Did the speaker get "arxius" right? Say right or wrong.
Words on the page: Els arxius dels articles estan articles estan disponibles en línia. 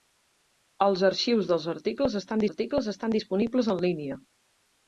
right